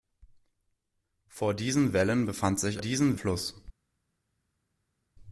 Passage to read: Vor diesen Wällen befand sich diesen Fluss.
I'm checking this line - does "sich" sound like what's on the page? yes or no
yes